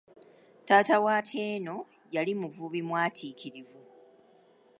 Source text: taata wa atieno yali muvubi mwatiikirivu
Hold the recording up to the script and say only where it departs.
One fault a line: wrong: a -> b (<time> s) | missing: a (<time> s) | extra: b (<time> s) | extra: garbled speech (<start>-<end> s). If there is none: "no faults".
no faults